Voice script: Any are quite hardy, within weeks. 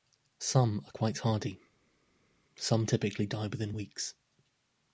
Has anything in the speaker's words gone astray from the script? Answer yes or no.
yes